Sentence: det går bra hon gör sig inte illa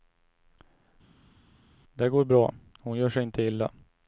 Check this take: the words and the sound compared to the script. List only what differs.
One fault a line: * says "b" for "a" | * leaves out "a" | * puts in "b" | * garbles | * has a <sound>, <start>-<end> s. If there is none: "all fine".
all fine